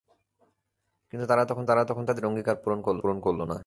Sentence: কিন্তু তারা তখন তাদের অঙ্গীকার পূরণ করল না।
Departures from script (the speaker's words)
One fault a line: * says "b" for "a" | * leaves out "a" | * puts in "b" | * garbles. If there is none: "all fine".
* puts in "তারা তখন"
* puts in "পূরণ করল"